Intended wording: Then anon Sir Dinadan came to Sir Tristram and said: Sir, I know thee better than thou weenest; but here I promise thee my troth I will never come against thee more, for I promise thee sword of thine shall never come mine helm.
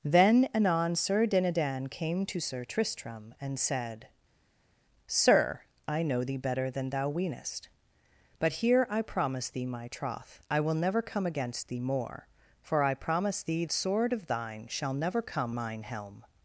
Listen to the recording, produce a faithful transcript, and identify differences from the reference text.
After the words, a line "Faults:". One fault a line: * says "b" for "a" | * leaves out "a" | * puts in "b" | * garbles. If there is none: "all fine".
Then anon Sir Dinadan came to Sir Tristram and said: Sir, I know thee better than thou weenest; but here I promise thee my troth I will never come against thee more, for I promise thee sword of thine shall never come mine helm.
Faults:
all fine